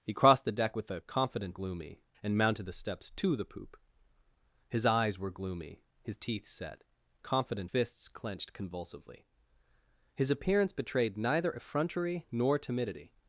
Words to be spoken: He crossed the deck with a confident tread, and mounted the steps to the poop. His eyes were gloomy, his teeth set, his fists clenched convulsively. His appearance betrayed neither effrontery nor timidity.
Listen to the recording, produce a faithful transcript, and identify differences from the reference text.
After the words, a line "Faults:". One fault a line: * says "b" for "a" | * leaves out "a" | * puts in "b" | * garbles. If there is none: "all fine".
He crossed the deck with a confident gloomy, and mounted the steps to the poop. His eyes were gloomy, his teeth set, confident fists clenched convulsively. His appearance betrayed neither effrontery nor timidity.
Faults:
* says "gloomy" for "tread"
* says "confident" for "his"